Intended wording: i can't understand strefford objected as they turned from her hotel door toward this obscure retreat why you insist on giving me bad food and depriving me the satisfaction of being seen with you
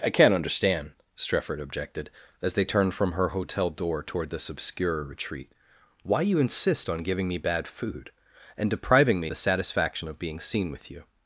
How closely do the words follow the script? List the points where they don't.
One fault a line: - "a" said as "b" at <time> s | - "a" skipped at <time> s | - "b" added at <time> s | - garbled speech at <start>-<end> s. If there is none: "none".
none